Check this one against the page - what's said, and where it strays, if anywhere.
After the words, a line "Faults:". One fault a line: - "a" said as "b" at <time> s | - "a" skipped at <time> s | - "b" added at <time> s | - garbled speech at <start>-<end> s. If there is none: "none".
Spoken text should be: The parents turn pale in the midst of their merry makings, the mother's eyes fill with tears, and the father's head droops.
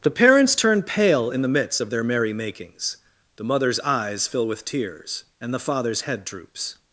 The parents turn pale in the midst of their merry makings, the mother's eyes fill with tears, and the father's head droops.
Faults:
none